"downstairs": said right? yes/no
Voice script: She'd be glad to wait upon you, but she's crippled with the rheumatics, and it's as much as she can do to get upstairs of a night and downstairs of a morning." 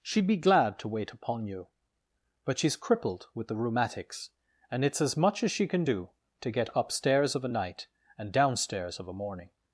yes